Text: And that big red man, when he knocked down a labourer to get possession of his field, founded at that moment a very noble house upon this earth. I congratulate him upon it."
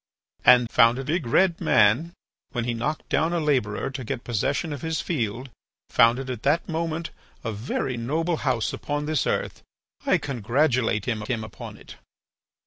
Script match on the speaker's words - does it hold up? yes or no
no